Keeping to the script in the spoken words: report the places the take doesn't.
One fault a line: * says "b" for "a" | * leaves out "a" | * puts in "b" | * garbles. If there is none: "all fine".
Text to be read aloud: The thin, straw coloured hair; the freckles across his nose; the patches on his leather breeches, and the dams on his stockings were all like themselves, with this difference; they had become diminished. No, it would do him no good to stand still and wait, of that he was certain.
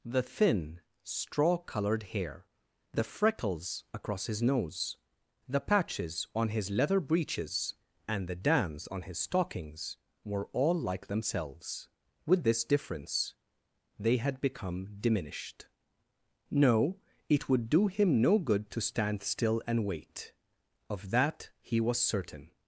all fine